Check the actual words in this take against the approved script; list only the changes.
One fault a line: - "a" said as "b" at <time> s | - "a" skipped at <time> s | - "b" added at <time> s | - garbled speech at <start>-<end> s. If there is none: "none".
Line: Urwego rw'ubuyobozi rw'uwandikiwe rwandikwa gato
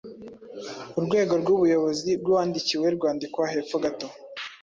- "hepfo" added at 3.5 s